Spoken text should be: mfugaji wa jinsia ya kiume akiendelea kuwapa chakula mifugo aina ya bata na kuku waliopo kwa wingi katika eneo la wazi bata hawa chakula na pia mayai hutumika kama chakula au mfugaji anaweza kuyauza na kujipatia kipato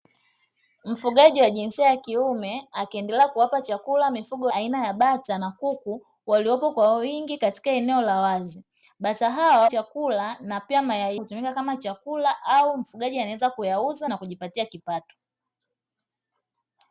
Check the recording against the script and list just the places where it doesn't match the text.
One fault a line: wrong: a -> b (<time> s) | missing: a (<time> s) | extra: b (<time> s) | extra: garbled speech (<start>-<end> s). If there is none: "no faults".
no faults